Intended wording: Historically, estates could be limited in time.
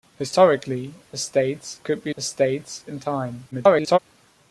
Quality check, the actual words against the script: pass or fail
fail